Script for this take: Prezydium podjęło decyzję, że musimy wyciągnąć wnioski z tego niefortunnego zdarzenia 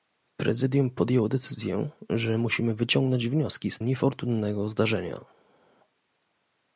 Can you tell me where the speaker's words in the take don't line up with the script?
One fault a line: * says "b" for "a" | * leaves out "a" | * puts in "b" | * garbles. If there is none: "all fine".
* leaves out "tego"